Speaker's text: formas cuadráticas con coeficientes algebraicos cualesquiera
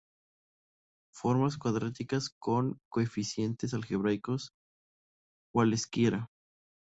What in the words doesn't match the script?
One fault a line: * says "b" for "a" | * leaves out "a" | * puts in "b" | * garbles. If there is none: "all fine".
all fine